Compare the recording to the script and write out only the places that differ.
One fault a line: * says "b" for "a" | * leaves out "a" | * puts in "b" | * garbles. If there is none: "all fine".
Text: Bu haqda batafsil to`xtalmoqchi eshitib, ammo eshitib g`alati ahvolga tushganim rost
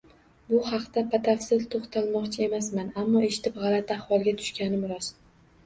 * says "emasman" for "eshitib"